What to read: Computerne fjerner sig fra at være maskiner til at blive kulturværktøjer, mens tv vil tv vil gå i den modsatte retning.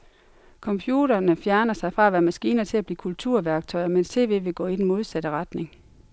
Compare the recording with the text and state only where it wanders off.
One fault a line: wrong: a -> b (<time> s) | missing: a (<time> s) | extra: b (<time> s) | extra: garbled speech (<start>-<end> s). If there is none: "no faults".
missing: tv vil (4.5 s)